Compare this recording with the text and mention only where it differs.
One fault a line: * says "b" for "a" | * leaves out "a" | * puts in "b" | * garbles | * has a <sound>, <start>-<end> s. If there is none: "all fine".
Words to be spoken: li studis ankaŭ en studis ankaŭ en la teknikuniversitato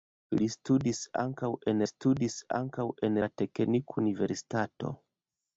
all fine